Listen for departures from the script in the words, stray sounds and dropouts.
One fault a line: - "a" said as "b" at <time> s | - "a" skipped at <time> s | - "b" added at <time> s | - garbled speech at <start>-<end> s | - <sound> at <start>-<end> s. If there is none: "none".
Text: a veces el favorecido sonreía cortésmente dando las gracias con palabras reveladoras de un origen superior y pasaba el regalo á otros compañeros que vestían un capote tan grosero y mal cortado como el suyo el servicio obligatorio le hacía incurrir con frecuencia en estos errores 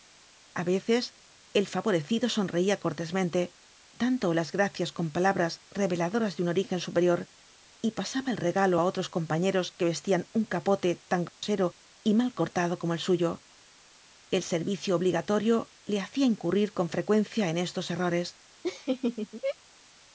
- dropout at 11.3-11.4 s
- laugh at 18.6-19.6 s